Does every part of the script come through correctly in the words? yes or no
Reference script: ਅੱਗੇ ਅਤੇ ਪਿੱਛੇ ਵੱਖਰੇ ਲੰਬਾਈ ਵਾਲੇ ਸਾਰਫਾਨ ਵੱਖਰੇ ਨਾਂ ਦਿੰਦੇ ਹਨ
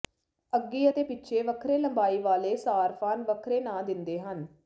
yes